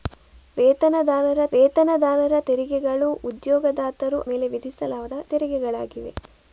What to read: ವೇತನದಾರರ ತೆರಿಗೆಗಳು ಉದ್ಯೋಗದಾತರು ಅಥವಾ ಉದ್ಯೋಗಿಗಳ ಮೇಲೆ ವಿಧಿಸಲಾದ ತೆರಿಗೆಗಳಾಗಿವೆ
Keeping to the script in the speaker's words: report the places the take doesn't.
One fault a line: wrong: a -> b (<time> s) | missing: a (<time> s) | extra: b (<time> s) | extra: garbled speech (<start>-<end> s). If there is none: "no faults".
extra: ವೇತನದಾರರ (1.5 s)
missing: ಅಥವಾ ಉದ್ಯೋಗಿಗಳ (4.2 s)